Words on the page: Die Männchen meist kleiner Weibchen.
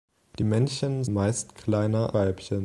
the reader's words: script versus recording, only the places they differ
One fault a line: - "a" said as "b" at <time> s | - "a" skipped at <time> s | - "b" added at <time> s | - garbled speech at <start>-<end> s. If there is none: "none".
none